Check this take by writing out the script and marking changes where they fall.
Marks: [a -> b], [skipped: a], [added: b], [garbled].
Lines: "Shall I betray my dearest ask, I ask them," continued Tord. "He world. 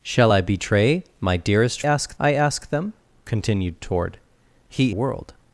"Shall I betray my dearest ask, I ask them," continued Tord. "He world.